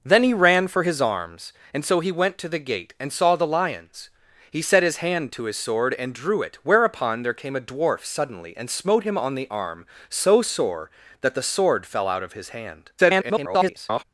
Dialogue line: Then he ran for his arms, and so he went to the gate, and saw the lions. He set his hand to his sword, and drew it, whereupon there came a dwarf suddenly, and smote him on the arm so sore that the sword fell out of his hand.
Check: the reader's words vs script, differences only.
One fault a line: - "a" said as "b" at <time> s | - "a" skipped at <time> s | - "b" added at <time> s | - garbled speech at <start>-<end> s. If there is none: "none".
- garbled speech at 13.0-14.0 s